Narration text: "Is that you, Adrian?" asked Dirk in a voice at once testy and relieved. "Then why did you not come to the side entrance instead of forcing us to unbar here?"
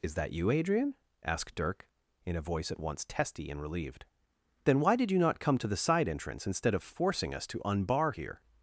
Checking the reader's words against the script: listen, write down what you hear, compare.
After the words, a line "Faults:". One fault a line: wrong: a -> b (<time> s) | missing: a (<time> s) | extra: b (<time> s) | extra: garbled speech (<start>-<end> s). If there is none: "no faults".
"Is that you, Adrian?" asked Dirk in a voice at once testy and relieved. "Then why did you not come to the side entrance instead of forcing us to unbar here?"
Faults:
no faults